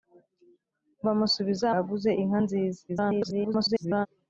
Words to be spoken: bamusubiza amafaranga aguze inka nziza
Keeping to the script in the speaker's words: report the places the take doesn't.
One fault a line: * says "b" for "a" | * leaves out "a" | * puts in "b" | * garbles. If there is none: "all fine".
* leaves out "amafaranga"
* garbles